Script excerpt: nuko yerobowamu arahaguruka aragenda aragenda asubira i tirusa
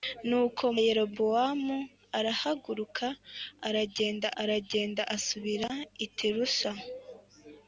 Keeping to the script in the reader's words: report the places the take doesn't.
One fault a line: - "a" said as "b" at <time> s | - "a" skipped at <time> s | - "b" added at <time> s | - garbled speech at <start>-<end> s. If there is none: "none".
none